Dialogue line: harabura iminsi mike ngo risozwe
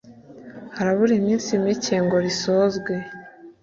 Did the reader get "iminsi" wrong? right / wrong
right